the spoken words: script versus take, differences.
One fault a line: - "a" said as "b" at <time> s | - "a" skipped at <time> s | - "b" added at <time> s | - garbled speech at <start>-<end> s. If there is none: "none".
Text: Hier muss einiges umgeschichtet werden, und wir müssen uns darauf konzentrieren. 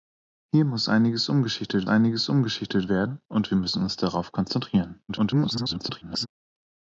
- "einiges umgeschichtet" added at 1.9 s
- garbled speech at 5.1-6.3 s